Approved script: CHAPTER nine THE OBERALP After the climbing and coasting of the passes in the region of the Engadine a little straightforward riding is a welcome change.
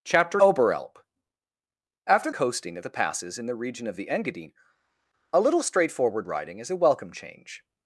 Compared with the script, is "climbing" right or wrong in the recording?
wrong